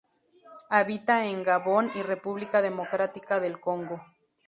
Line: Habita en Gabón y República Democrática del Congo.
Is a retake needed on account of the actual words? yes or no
no